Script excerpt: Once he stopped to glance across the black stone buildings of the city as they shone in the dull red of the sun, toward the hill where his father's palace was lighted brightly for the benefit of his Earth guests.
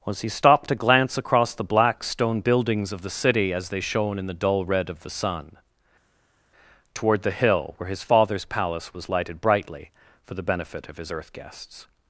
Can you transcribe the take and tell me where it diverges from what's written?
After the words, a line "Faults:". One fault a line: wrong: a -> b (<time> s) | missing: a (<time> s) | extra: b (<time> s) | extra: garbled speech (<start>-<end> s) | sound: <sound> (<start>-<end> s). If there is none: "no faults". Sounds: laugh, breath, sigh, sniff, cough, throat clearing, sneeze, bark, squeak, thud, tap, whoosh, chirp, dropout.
Was he stopped to glance across the black stone buildings of the city as they shone in the dull red of the sun, toward the hill where his father's palace was lighted brightly for the benefit of his Earth guests.
Faults:
wrong: Once -> Was (0.1 s)